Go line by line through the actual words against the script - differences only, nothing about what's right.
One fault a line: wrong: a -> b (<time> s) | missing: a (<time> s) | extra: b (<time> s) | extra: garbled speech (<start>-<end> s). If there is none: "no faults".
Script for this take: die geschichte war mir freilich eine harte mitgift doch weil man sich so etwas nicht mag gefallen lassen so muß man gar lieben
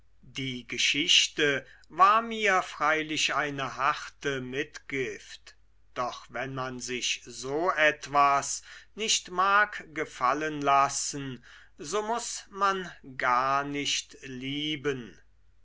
wrong: weil -> wenn (6.3 s)
extra: nicht (13.6 s)